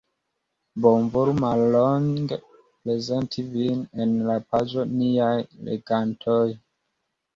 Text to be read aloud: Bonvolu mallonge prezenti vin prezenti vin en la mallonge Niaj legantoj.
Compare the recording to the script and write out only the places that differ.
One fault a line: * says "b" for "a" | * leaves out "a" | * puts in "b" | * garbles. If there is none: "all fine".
* leaves out "prezenti vin"
* says "paĝo" for "mallonge"